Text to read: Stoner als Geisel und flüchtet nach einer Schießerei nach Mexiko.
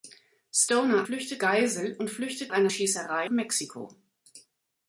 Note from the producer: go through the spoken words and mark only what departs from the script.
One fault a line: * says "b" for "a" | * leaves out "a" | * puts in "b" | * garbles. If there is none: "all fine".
* says "flüchtet" for "als"
* leaves out "nach"
* leaves out "nach"